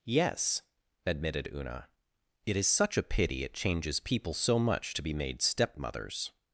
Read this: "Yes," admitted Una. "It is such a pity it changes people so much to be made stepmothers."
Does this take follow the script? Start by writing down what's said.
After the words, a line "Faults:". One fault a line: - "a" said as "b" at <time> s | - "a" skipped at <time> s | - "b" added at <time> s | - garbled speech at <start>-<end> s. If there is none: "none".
"Yes," admitted Una. "It is such a pity it changes people so much to be made stepmothers."
Faults:
none